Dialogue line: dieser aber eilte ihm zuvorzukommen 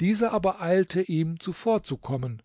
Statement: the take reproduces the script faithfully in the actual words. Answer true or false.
true